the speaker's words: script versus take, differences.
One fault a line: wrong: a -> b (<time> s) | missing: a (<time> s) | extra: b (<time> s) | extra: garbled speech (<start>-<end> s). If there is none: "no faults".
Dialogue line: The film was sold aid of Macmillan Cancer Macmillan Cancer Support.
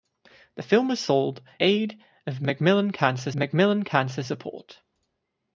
no faults